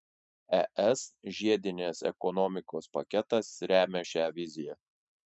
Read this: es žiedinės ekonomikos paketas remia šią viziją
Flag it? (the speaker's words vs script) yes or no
no